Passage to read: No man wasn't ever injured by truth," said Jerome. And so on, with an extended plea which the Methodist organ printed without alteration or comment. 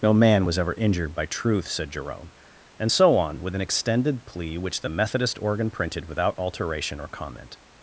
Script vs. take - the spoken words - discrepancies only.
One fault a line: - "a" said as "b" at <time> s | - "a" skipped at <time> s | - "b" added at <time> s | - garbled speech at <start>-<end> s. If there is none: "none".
- "wasn't" said as "was" at 0.5 s